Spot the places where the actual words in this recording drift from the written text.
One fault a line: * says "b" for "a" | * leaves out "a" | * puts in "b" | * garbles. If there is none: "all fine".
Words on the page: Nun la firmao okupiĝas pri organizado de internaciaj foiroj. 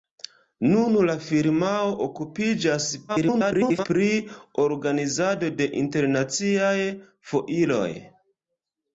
* garbles